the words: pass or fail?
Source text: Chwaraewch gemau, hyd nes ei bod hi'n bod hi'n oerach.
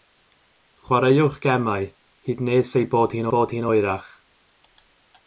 pass